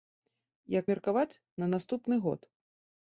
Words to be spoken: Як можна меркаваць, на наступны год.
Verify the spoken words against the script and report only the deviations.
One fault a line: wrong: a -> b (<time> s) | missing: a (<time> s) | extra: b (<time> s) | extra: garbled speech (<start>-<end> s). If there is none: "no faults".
missing: можна (0.8 s)